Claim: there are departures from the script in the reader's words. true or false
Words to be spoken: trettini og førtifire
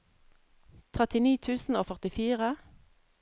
true